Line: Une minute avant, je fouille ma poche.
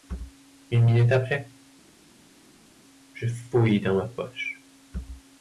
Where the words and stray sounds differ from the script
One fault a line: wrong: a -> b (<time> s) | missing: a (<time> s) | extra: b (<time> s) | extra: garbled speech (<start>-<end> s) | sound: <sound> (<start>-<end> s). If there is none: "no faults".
wrong: avant -> après (1.1 s)
extra: dans (3.8 s)